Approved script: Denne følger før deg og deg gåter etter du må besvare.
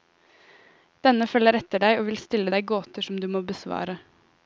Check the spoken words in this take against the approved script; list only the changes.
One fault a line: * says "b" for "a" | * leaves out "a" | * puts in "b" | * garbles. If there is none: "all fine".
* says "etter" for "før"
* puts in "vil stille"
* says "som" for "etter"